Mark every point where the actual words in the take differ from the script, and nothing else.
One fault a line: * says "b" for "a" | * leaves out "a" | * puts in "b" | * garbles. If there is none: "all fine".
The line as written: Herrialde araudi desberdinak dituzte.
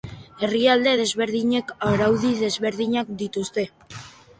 * puts in "desberdinek"